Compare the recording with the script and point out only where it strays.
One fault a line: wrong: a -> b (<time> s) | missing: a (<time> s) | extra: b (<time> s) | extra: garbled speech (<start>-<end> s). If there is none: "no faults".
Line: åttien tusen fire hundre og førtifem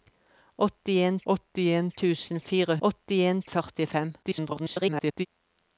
extra: åttien (1.3 s)
wrong: hundre -> åttien (2.9 s)
extra: garbled speech (4.2-5.3 s)